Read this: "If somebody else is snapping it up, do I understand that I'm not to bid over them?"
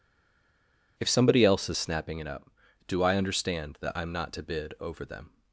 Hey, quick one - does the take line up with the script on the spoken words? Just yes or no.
yes